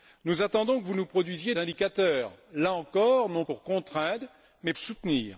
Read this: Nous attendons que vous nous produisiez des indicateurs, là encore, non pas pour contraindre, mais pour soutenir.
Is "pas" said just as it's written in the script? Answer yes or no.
no